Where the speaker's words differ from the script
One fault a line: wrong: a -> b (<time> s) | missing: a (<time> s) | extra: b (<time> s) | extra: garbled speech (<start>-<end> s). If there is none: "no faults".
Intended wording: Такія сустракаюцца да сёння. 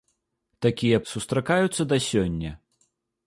no faults